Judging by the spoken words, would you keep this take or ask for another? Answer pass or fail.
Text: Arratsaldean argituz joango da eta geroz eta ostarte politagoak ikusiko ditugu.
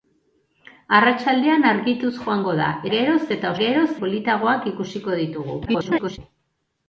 fail